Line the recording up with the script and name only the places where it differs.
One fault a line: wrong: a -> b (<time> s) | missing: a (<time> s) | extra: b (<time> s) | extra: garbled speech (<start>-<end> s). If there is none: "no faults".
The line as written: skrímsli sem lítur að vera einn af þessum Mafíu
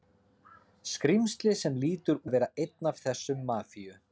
no faults